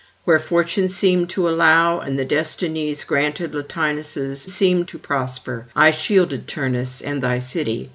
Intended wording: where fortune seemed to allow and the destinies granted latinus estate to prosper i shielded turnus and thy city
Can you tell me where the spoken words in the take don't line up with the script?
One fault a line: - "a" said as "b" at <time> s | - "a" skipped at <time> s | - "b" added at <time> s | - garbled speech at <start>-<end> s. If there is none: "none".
- "estate" said as "seemed" at 4.5 s